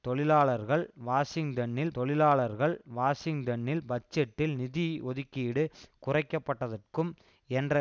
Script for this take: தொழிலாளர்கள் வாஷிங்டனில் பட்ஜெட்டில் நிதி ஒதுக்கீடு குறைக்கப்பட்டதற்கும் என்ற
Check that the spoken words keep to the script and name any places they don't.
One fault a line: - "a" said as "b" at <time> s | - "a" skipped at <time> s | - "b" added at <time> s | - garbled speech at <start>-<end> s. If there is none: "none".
- "தொழிலாளர்கள் வாஷிங்டனில்" added at 1.9 s